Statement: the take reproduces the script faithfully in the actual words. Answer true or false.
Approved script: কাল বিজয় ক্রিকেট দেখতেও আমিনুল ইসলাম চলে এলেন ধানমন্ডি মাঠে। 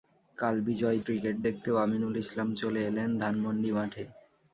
true